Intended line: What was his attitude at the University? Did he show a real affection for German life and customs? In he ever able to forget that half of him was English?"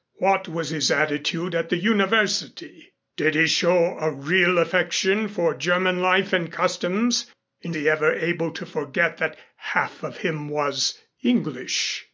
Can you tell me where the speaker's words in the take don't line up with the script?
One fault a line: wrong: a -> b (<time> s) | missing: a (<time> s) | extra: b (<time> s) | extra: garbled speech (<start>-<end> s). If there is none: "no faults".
no faults